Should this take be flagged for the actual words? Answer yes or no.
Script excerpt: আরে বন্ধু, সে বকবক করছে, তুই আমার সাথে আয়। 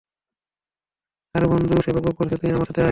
no